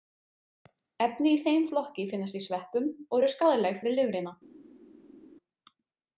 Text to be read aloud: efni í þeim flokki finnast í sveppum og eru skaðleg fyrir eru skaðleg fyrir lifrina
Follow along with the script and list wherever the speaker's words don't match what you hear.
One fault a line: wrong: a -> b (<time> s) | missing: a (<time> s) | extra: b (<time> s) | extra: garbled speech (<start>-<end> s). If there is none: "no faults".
missing: eru skaðleg fyrir (4.0 s)